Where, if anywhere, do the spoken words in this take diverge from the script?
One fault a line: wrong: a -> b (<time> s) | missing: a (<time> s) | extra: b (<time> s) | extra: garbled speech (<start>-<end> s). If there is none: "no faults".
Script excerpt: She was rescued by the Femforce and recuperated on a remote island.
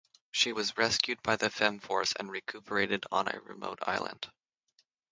no faults